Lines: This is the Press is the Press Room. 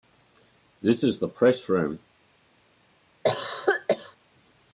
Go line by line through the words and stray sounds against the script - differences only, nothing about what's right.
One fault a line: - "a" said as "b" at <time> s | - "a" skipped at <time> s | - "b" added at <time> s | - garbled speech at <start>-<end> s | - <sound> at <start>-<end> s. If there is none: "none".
- "is the Press" skipped at 1.7 s
- cough at 3.2-4.2 s